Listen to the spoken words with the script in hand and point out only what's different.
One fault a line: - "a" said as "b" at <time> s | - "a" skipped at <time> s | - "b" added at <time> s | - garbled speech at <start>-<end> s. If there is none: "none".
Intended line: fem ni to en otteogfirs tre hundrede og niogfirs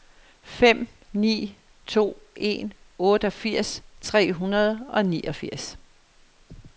none